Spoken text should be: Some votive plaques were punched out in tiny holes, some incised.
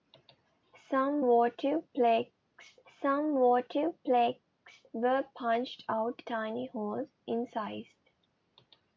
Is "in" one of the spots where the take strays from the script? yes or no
yes